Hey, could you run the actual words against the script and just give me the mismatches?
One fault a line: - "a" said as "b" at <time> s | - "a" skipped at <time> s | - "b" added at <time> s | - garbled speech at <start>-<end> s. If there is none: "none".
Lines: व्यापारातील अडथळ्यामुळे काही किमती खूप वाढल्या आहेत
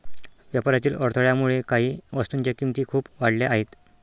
- "वस्तूंच्या" added at 2.1 s